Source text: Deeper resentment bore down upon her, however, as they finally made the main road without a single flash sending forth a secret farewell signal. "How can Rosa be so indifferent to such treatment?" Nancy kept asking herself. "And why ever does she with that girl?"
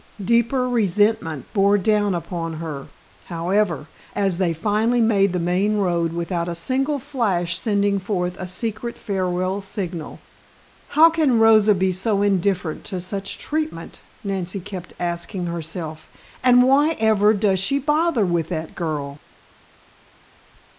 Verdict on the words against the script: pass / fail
fail